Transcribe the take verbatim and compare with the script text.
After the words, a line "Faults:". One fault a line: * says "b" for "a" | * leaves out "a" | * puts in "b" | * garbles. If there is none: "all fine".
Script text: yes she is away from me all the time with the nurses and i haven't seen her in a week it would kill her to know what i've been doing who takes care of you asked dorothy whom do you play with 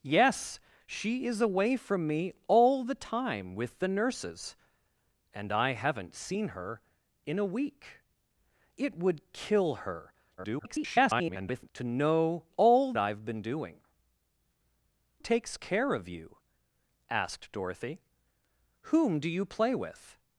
yes she is away from me all the time with the nurses and i haven't seen her in a week it would kill her [garbled] to know all i've been doing takes care of you asked dorothy whom do you play with
Faults:
* garbles
* says "all" for "what"
* leaves out "who"